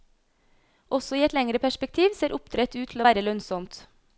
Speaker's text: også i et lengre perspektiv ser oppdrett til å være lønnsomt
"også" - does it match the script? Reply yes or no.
yes